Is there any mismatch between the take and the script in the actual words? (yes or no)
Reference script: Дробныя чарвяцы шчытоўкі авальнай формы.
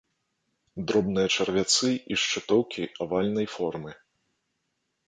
yes